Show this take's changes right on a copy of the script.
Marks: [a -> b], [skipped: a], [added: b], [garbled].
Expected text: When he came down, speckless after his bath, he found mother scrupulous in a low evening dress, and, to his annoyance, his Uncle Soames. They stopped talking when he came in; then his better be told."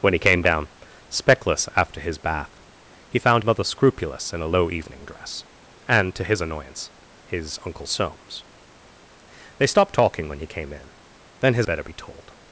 When he came down, speckless after his bath, he found mother scrupulous in a low evening dress, and, to his annoyance, his Uncle Soames. They stopped talking when he came in; then his better be told."